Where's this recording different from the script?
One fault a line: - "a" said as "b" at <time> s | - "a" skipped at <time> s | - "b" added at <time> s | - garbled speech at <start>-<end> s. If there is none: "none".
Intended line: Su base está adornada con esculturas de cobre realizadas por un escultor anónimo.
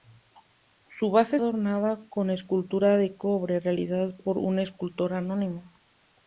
- "está" skipped at 1.4 s